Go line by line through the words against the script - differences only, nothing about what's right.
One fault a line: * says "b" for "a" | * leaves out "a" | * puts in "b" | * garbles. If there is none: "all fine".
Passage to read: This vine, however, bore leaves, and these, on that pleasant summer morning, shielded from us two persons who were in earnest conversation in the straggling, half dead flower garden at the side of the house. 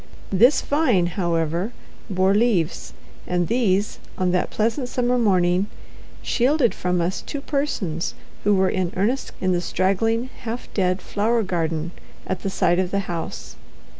* leaves out "conversation"